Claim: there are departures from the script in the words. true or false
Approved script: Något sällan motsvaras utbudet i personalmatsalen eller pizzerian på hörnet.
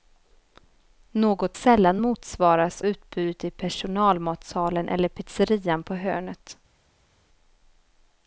false